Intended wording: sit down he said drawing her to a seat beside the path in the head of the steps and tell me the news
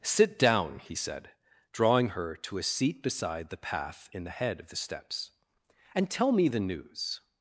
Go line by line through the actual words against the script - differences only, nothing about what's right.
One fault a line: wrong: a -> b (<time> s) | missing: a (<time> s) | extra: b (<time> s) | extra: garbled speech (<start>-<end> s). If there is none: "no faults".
no faults